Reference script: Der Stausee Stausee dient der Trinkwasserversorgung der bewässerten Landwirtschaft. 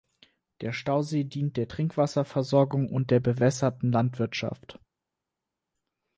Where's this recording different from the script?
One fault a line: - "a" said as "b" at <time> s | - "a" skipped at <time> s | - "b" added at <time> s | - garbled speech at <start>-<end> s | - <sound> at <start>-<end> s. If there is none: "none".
- "Stausee" skipped at 1.3 s
- "und" added at 2.9 s